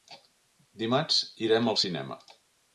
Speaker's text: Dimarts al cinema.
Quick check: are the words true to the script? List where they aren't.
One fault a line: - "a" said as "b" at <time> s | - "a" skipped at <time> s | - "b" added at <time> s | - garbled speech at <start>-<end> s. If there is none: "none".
- "irem" added at 1.5 s